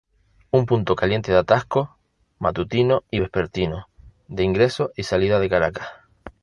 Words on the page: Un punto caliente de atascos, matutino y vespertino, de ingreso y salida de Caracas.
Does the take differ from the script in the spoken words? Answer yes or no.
no